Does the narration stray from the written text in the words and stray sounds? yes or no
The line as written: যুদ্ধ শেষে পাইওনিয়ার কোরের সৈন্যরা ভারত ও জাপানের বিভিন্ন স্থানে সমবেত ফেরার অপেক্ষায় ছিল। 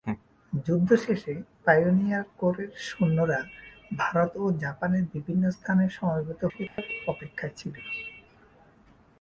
yes